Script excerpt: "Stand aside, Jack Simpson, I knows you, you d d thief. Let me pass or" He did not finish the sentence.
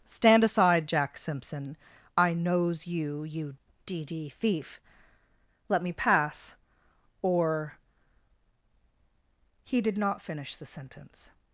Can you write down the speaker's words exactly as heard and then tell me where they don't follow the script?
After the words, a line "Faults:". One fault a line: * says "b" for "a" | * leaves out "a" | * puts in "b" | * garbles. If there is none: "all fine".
"Stand aside, Jack Simpson, I knows you, you d d thief. Let me pass or" He did not finish the sentence.
Faults:
all fine